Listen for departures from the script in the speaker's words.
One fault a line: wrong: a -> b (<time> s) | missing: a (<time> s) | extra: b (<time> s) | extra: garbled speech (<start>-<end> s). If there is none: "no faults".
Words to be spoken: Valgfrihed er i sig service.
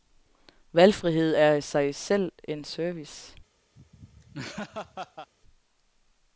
extra: selv en (2.0 s)